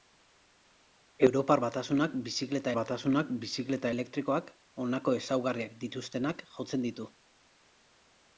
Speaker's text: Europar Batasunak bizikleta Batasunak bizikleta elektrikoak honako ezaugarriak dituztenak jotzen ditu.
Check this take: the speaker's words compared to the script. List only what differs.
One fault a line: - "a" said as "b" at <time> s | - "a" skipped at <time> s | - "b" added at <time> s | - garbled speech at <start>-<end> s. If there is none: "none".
none